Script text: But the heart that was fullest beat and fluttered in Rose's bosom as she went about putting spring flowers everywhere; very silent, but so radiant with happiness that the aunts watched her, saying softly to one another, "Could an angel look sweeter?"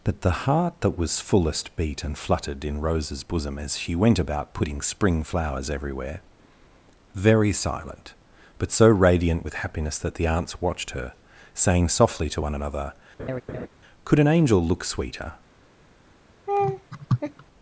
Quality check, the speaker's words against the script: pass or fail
pass